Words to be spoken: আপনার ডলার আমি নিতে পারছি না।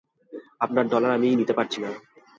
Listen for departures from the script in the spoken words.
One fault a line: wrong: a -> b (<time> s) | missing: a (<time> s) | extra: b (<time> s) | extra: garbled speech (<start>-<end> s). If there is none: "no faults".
no faults